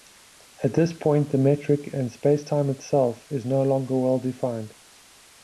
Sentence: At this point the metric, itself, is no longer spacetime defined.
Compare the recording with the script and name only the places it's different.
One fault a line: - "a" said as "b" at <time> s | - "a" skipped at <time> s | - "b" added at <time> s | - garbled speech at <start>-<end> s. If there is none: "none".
- "and spacetime" added at 1.9 s
- "spacetime" said as "well" at 4.0 s